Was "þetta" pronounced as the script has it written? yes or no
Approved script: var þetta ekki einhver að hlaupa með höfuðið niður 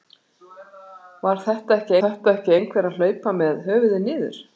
yes